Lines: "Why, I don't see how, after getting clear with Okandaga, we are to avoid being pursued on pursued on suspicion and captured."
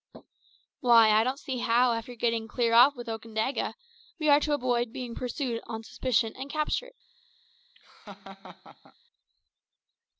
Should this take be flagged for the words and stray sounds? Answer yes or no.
yes